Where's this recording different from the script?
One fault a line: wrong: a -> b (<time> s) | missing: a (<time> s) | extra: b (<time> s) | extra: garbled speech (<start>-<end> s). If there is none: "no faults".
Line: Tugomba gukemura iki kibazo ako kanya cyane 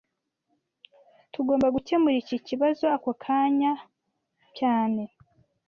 no faults